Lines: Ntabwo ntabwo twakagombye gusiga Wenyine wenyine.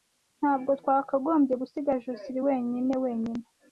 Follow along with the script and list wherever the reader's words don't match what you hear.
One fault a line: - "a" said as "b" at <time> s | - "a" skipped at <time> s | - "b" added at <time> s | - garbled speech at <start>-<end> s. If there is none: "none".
- "ntabwo" skipped at 0.7 s
- "Josehl" added at 2.0 s